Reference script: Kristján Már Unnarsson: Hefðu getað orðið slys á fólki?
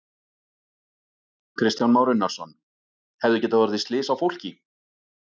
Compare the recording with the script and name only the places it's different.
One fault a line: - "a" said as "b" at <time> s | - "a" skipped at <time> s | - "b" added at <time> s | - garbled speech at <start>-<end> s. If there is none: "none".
none